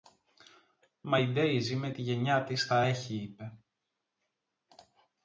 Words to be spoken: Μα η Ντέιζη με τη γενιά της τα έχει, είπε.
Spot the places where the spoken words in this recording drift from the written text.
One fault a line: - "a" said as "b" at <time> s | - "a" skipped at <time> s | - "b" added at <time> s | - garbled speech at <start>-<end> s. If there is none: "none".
none